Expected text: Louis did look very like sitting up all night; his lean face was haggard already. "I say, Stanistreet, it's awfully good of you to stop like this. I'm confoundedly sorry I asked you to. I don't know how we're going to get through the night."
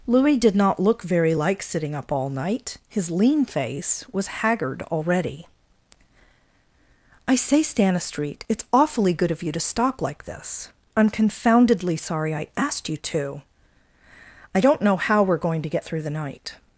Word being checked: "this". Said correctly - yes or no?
yes